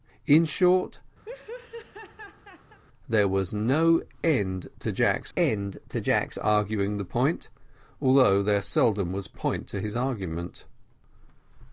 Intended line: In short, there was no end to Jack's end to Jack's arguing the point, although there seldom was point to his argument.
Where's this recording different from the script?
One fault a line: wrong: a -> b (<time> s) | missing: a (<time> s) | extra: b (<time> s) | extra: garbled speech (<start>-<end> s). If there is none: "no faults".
no faults